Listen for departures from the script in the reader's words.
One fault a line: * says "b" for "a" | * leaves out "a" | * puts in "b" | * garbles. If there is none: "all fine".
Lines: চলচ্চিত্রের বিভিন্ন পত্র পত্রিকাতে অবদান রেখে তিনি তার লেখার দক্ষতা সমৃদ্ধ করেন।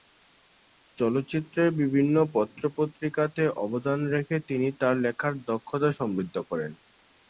all fine